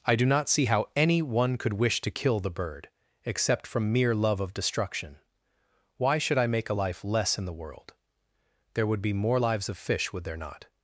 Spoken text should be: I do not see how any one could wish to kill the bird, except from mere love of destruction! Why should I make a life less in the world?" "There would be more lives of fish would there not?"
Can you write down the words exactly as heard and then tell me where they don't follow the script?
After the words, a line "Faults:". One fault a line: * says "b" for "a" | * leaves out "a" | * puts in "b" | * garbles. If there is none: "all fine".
I do not see how any one could wish to kill the bird, except from mere love of destruction! Why should I make a life less in the world?" "There would be more lives of fish would there not?"
Faults:
all fine